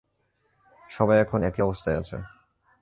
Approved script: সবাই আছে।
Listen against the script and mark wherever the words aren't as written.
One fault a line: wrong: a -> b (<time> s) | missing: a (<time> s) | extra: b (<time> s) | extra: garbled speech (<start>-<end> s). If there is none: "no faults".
extra: এখন একই অবস্থায় (1.2 s)